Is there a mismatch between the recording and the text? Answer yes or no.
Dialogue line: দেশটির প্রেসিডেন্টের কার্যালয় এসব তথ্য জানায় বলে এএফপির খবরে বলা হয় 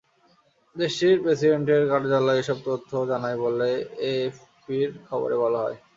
no